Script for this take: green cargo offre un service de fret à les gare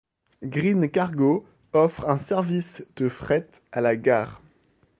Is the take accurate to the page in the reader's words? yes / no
no